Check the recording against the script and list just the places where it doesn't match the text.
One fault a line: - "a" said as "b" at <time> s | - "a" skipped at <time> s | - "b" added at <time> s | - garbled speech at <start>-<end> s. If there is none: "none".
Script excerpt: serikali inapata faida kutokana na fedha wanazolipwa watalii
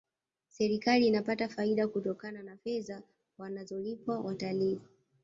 none